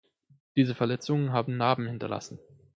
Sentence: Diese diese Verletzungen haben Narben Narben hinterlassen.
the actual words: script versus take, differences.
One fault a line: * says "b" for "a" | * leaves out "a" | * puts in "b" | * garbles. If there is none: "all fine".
* leaves out "diese"
* leaves out "Narben"